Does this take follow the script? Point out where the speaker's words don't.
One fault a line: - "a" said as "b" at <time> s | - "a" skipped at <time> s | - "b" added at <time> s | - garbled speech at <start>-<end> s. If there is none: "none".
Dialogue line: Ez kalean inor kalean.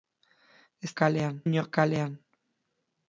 none